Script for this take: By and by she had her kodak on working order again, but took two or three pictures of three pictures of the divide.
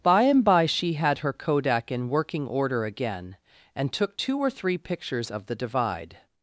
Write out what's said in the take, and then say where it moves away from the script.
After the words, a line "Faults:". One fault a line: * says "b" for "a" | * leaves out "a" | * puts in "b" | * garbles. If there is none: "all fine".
By and by she had her kodak in working order again, and took two or three pictures of the divide.
Faults:
* says "in" for "on"
* says "and" for "but"
* leaves out "three pictures of"